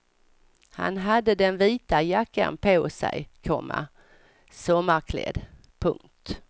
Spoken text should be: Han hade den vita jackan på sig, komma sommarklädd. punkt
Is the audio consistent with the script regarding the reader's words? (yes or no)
yes